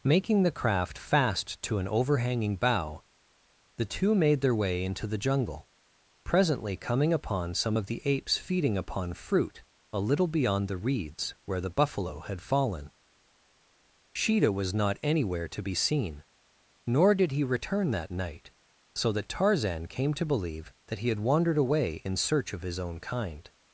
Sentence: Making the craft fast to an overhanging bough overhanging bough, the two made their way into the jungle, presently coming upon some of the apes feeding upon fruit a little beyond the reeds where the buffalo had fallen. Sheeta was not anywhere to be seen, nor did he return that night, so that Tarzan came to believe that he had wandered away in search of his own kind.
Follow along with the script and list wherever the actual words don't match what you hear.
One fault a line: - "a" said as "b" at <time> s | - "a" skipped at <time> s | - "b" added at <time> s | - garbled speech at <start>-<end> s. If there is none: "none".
- "overhanging bough" skipped at 3.0 s